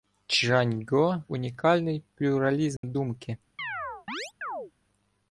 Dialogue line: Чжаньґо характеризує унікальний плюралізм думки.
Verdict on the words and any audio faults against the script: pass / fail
fail